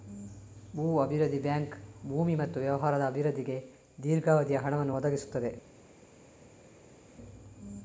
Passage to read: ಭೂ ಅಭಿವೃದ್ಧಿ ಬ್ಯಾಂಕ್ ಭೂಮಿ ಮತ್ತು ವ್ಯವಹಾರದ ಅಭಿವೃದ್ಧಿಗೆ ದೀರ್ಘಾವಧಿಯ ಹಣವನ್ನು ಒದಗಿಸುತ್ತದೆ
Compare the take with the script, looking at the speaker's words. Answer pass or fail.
pass